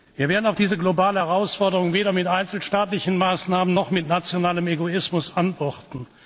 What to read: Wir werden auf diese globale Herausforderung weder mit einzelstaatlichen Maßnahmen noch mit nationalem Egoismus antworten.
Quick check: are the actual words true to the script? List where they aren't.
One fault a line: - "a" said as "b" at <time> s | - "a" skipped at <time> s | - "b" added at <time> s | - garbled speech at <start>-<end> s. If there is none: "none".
none